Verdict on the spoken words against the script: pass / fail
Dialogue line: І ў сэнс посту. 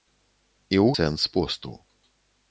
pass